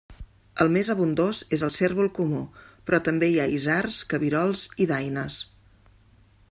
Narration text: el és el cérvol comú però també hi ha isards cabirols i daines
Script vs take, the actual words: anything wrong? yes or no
yes